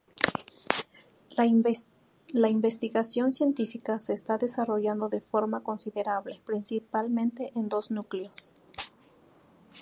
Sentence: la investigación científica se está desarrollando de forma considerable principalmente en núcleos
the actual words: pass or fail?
fail